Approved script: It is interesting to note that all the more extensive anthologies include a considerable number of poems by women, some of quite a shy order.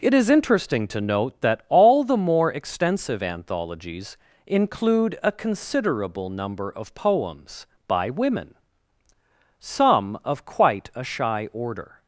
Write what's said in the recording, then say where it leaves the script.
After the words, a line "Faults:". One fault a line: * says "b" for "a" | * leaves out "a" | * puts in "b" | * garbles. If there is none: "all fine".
It is interesting to note that all the more extensive anthologies include a considerable number of poems by women, some of quite a shy order.
Faults:
all fine